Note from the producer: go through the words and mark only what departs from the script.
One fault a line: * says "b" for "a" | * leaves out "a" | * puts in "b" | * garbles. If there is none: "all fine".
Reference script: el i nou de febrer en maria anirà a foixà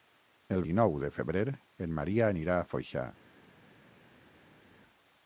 all fine